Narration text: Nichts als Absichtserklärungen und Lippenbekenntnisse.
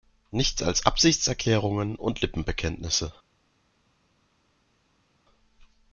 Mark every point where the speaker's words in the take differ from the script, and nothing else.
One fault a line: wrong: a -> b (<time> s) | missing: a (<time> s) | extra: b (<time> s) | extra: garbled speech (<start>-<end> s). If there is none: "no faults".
no faults